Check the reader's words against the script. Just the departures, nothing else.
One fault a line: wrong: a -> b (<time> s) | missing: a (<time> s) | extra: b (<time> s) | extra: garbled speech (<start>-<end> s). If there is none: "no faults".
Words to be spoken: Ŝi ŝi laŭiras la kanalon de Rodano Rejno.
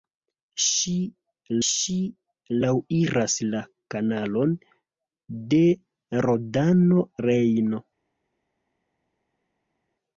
no faults